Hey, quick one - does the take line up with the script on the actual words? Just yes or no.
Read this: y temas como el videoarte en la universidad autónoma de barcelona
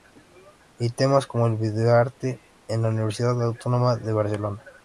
yes